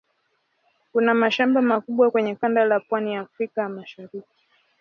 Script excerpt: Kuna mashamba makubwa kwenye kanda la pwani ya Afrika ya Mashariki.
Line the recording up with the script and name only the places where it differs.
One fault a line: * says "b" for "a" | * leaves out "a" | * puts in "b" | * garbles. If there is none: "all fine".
all fine